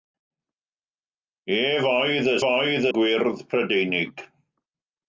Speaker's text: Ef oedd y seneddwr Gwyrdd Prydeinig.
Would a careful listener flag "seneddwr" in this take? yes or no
yes